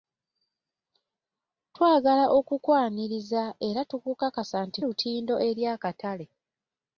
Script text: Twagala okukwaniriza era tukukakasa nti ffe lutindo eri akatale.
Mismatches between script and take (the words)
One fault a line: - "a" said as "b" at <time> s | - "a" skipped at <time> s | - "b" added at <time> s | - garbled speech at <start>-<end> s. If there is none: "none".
- "ffe" skipped at 4.8 s